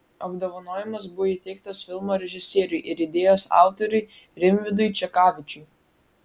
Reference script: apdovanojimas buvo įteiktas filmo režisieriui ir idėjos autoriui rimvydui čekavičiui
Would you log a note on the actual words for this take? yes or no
no